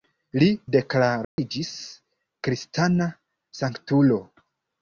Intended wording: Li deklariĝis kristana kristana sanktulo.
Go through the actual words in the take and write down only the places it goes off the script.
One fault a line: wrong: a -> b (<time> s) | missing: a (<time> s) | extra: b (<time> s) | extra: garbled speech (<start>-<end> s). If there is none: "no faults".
missing: kristana (3.1 s)